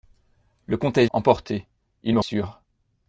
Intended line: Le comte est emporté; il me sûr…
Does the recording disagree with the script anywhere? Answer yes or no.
no